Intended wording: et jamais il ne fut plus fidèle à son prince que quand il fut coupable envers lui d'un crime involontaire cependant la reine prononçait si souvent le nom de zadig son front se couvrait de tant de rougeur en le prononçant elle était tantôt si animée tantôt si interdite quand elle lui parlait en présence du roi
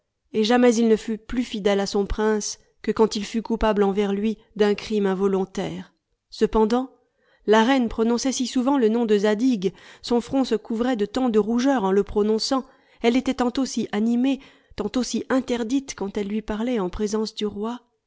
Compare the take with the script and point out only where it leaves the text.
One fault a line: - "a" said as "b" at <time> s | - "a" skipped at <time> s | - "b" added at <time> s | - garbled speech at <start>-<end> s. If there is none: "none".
none